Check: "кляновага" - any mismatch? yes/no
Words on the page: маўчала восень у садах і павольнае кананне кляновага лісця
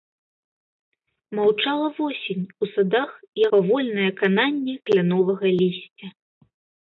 no